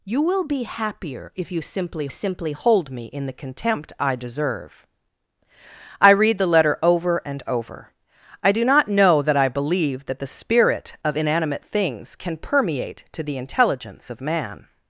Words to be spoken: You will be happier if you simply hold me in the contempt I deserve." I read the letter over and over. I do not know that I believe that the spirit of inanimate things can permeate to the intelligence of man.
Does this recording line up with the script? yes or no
no